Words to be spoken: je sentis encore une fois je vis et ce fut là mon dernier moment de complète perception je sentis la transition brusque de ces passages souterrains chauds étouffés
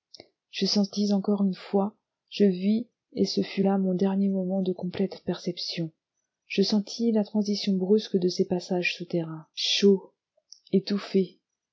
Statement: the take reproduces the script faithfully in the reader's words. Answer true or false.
true